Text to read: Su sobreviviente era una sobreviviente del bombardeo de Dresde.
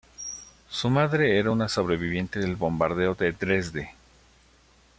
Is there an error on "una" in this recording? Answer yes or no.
no